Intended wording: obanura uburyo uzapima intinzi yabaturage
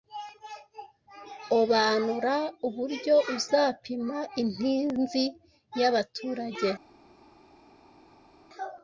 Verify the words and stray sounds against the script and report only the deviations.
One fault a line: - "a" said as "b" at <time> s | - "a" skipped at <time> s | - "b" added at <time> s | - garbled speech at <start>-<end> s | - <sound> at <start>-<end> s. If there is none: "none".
none